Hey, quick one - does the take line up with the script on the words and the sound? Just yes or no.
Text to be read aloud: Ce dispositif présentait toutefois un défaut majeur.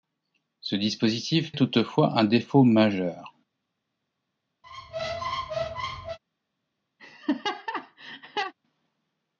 no